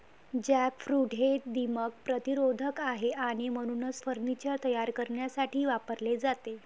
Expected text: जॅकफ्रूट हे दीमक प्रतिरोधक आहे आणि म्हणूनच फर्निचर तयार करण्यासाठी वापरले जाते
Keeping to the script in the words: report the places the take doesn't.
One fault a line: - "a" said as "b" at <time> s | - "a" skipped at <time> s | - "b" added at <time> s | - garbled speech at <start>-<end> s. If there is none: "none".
none